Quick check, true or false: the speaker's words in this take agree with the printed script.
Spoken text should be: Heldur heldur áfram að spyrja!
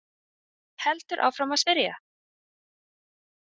false